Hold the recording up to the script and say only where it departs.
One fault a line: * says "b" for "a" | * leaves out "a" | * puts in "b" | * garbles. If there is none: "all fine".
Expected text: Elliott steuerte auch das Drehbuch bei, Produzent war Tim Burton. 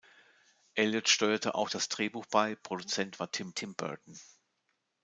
* puts in "Tim"